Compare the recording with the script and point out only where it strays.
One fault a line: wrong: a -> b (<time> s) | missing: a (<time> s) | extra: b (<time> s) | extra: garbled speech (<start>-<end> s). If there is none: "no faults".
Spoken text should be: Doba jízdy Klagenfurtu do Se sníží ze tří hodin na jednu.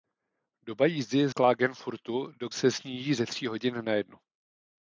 no faults